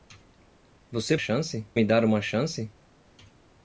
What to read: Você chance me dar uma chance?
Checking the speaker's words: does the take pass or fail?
pass